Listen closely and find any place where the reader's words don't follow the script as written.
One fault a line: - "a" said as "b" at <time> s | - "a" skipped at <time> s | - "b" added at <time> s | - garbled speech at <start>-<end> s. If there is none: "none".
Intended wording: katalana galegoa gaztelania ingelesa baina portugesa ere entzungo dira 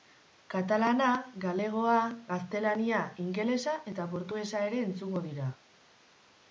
- "baina" said as "eta" at 3.9 s